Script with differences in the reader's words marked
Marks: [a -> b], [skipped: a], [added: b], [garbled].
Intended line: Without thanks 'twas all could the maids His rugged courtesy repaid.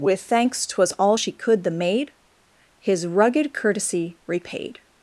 [Without -> With] thanks 'twas all [added: she] could the [maids -> maid] His rugged courtesy repaid.